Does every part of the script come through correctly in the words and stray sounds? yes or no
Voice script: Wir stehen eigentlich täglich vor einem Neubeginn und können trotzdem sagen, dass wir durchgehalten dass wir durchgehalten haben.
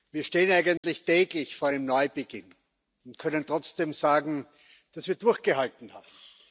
no